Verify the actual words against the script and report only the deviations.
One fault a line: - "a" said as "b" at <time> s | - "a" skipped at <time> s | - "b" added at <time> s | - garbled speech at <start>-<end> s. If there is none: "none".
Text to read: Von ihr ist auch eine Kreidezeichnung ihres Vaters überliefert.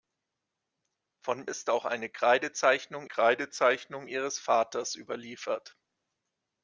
- "ihr" skipped at 1.4 s
- "Kreidezeichnung" added at 3.0 s